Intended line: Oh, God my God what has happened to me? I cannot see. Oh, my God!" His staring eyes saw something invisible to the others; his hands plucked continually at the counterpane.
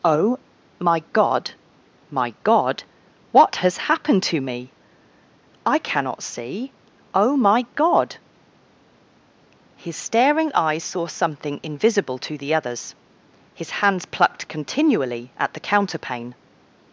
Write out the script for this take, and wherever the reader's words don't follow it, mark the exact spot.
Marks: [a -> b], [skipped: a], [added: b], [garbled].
Oh, [added: my] God my God what has happened to me? I cannot see. Oh, my God!" His staring eyes saw something invisible to the others; his hands plucked continually at the counterpane.